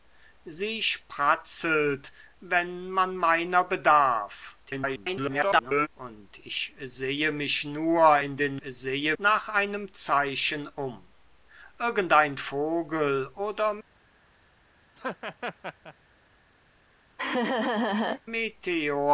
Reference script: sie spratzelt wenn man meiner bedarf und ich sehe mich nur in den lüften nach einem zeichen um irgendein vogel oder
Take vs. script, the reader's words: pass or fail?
fail